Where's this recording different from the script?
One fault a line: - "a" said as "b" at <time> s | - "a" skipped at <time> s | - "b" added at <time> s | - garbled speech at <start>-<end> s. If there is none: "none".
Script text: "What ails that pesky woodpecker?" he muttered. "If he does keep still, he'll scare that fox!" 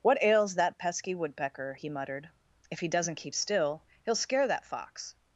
- "does" said as "doesn't" at 2.9 s